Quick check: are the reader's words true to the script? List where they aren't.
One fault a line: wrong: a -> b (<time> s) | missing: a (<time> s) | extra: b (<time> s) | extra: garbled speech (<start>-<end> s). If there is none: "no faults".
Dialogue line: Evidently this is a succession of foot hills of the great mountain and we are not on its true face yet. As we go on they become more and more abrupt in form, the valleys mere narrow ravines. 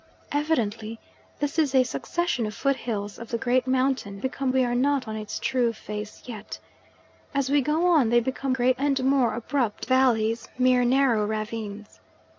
wrong: and -> become (4.2 s)
wrong: more -> great (8.5 s)
missing: in form the (9.8 s)